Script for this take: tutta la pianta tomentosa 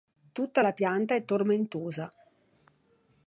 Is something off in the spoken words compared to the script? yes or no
yes